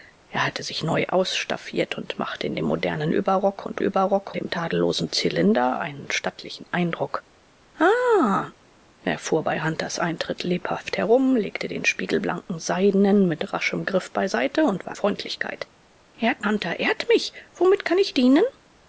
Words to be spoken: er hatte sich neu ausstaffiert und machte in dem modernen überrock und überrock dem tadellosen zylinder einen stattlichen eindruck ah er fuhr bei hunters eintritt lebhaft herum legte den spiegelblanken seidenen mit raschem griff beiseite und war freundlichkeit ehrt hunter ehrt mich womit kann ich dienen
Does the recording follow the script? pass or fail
pass